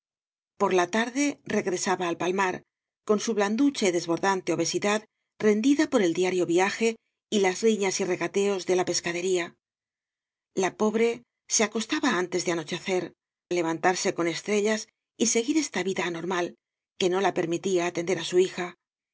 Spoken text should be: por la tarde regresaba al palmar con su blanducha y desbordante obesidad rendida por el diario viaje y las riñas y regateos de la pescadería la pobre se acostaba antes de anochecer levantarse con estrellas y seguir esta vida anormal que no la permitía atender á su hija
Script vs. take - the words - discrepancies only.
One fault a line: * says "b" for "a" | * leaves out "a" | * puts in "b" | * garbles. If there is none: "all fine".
all fine